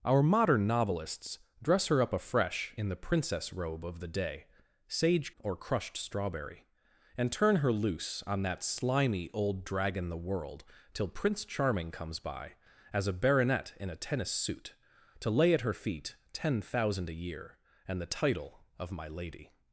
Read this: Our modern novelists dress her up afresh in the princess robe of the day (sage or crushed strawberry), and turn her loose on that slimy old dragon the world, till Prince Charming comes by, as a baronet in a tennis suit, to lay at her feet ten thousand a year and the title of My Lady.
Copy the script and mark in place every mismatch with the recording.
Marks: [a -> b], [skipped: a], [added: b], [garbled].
Our modern novelists dress her up afresh in the princess robe of the day (sage or crushed strawberry), and turn her loose on that slimy old dragon the world, till Prince Charming comes by, as a baronet in a tennis suit, to lay at her feet ten thousand a year and the title of My Lady.